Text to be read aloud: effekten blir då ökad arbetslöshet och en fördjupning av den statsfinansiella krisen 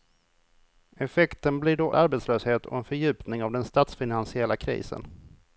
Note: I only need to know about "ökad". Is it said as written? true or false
false